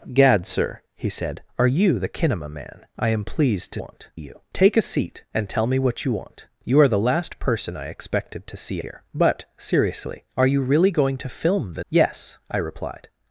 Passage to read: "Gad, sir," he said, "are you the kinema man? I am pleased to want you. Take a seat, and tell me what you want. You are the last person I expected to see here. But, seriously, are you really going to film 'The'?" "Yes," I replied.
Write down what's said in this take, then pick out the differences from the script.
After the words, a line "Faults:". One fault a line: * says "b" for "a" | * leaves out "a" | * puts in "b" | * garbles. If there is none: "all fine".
"Gad, sir," he said, "are you the kinema man? I am pleased to want you. Take a seat, and tell me what you want. You are the last person I expected to see here. But, seriously, are you really going to film 'The'?" "Yes," I replied.
Faults:
all fine